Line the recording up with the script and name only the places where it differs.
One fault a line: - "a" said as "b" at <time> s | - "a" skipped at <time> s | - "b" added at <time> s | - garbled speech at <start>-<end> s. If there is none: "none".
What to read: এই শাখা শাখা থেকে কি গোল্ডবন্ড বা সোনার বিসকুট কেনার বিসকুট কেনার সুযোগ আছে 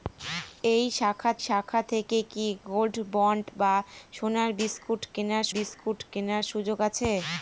none